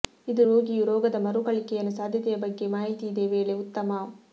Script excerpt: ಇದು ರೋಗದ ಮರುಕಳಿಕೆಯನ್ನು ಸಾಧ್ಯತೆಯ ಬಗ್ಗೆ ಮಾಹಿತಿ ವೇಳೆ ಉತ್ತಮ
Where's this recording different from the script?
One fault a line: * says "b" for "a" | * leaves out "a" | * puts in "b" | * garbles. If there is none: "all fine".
* puts in "ರೋಗಿಯು"
* puts in "ಇದೆ"